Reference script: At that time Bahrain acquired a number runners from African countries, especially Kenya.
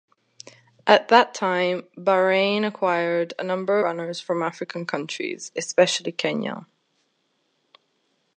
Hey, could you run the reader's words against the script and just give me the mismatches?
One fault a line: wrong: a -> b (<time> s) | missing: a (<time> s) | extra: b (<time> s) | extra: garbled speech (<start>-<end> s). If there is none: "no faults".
no faults